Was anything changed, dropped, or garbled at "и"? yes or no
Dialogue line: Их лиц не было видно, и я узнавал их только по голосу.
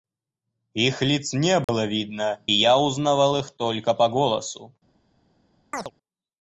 yes